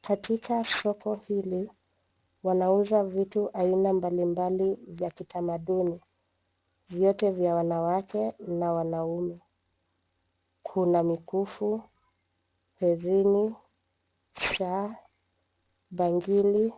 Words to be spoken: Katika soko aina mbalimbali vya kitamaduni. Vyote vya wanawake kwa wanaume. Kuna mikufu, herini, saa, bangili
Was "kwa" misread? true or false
true